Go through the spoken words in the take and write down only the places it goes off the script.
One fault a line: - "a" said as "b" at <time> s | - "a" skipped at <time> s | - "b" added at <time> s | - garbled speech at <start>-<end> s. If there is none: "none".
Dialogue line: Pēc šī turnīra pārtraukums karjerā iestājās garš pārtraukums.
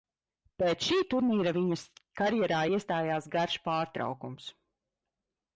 - "pārtraukums" said as "viņas" at 1.6 s